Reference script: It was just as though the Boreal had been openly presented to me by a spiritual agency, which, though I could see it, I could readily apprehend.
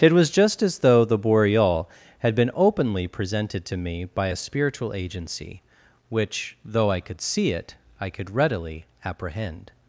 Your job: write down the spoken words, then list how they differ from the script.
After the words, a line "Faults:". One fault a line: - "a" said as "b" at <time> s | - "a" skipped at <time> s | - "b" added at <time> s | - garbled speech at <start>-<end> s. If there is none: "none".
It was just as though the Boreal had been openly presented to me by a spiritual agency, which, though I could see it, I could readily apprehend.
Faults:
none